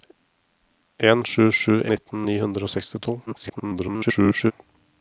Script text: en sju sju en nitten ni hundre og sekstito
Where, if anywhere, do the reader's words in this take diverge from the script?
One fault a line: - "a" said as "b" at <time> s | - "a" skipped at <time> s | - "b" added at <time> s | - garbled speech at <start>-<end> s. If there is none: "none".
- "en" skipped at 1.8 s
- garbled speech at 3.3-4.5 s